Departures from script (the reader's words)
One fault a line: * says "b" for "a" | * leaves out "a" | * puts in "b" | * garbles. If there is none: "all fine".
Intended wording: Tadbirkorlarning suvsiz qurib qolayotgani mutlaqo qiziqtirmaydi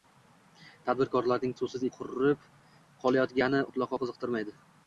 all fine